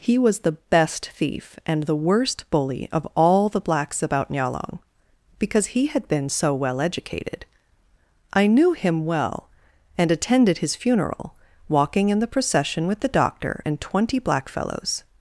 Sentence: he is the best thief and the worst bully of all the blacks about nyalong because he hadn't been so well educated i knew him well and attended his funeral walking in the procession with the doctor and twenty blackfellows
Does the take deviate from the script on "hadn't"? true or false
true